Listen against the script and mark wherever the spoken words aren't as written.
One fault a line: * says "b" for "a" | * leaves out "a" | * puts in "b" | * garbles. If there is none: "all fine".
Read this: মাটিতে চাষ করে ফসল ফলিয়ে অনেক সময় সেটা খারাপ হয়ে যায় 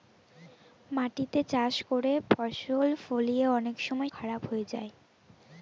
* leaves out "সেটা"